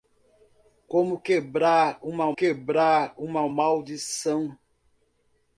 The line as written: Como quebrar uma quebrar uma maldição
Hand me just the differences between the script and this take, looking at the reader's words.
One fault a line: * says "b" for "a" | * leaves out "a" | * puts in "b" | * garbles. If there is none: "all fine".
all fine